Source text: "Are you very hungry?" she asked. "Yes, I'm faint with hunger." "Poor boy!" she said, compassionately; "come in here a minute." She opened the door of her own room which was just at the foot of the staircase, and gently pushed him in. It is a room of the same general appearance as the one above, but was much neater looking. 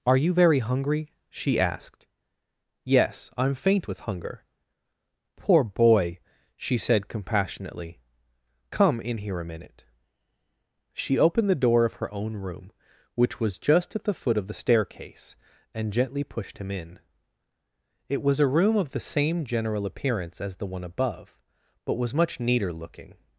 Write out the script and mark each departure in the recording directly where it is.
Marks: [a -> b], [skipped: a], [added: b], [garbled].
"Are you very hungry?" she asked. "Yes, I'm faint with hunger." "Poor boy!" she said, compassionately; "come in here a minute." She opened the door of her own room which was just at the foot of the staircase, and gently pushed him in. It [is -> was] a room of the same general appearance as the one above, but was much neater looking.